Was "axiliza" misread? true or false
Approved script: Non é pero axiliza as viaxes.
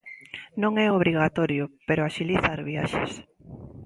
false